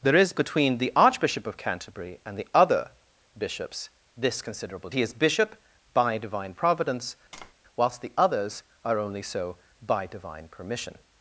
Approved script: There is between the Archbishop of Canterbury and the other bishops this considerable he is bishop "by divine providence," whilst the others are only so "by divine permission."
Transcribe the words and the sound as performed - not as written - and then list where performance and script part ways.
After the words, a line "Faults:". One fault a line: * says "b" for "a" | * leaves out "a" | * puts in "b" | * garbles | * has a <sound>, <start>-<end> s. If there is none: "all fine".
There is between the Archbishop of Canterbury and the other bishops this considerable he is bishop "by divine providence," whilst the others are only so "by divine permission."
Faults:
* has a tap, 7.3-7.5 s